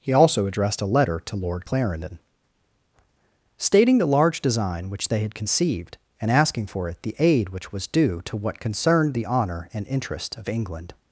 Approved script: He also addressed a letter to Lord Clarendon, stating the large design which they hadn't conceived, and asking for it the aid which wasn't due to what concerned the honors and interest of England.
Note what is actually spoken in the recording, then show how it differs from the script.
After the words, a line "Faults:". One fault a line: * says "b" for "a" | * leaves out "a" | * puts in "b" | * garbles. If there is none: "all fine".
He also addressed a letter to Lord Clarendon, stating the large design which they had conceived, and asking for it the aid which was due to what concerned the honor and interest of England.
Faults:
* says "had" for "hadn't"
* says "was" for "wasn't"
* says "honor" for "honors"